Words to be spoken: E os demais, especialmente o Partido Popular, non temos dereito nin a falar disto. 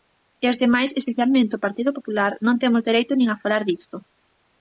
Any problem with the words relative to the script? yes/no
no